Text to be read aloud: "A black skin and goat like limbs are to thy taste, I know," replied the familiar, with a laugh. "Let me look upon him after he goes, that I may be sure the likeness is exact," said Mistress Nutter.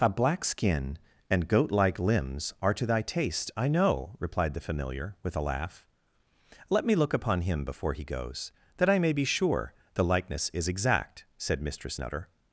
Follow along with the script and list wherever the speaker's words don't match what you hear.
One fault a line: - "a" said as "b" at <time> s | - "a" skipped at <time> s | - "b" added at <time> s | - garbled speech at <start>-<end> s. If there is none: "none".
- "after" said as "before" at 7.6 s